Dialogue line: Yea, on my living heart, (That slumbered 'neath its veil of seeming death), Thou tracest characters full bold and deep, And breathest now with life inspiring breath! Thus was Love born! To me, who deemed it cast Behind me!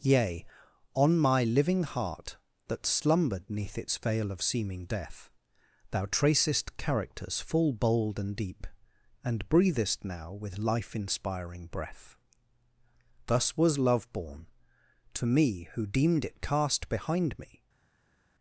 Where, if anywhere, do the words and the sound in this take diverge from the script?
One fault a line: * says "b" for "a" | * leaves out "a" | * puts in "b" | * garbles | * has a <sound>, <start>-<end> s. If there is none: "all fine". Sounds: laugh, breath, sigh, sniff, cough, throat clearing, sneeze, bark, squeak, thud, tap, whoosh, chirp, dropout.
all fine